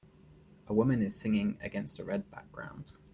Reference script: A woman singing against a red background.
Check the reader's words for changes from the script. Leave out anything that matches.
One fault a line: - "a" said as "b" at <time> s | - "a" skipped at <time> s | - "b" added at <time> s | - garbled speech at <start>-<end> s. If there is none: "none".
- "is" added at 1.0 s